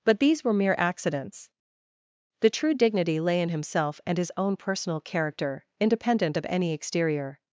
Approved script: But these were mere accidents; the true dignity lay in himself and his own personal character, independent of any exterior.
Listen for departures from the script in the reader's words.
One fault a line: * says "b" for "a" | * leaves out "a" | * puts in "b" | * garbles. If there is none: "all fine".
all fine